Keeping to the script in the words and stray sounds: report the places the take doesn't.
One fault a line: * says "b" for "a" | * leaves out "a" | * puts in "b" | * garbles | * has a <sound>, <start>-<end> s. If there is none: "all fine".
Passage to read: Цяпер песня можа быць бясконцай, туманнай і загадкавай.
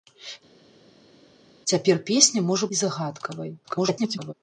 * leaves out "быць бясконцай туманнай"
* garbles